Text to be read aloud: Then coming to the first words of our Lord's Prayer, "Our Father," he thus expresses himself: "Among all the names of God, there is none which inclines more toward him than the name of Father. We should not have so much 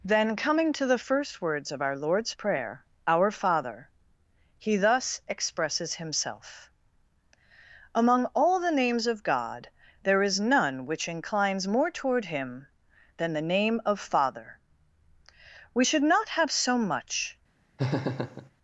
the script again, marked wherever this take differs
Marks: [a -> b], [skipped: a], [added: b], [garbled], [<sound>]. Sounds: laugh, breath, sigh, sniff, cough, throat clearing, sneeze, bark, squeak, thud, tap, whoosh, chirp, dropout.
Then coming to the first words of our Lord's Prayer, "Our Father," he thus expresses himself: "Among all the names of God, there is none which inclines more toward him than the name of Father. We should not have so much [laugh]